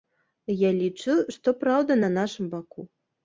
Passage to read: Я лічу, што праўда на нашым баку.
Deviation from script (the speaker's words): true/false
false